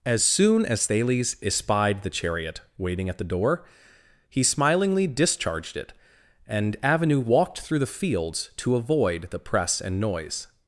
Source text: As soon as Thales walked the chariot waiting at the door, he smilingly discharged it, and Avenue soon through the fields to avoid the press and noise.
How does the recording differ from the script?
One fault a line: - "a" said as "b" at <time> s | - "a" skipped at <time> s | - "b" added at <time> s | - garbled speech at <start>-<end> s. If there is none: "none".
- "walked" said as "espied" at 1.4 s
- "soon" said as "walked" at 7.2 s